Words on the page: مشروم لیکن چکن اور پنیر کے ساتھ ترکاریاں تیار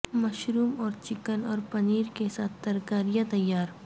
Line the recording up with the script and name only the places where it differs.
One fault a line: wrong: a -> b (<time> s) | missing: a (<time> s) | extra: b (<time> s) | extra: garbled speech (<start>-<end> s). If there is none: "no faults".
wrong: لیکن -> اور (0.8 s)